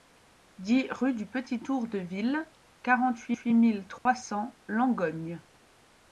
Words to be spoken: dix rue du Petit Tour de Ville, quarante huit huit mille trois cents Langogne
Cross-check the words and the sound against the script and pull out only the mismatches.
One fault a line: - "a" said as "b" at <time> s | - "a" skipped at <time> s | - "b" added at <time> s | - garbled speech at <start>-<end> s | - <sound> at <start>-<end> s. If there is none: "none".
- dropout at 4.0-4.1 s